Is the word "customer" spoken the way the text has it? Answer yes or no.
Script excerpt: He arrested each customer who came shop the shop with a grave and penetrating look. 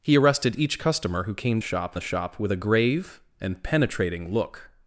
yes